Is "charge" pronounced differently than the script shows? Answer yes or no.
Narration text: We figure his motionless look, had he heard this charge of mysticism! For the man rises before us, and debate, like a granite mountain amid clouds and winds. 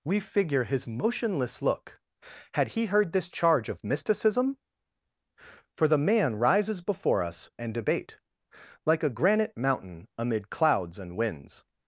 no